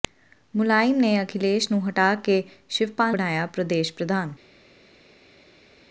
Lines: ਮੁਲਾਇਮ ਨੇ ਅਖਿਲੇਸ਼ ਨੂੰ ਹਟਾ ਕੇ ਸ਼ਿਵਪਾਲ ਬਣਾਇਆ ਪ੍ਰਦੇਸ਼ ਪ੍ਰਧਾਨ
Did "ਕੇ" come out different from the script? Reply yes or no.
no